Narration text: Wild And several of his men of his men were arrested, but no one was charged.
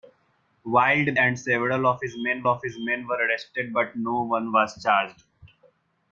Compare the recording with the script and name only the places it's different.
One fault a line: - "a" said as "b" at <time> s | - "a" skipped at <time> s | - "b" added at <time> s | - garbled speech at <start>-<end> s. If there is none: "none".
none